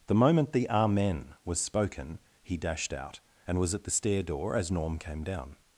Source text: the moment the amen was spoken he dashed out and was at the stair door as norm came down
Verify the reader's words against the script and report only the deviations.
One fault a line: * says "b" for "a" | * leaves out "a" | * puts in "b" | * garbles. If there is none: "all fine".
all fine